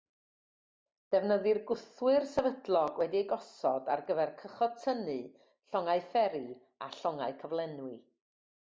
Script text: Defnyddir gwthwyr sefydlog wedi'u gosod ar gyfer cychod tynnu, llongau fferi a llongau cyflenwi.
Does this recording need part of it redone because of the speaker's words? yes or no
no